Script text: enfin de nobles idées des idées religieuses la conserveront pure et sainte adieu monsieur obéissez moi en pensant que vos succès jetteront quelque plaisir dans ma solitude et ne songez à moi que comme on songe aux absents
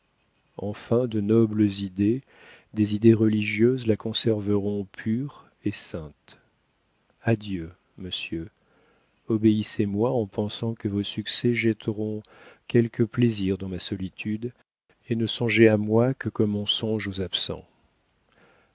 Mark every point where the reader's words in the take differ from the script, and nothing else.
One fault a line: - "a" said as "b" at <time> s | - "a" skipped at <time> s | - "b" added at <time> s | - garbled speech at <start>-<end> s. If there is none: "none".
none